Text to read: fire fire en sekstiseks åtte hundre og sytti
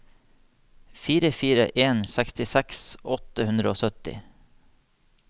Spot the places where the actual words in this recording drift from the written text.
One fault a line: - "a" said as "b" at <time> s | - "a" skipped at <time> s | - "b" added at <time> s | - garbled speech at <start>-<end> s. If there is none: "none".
none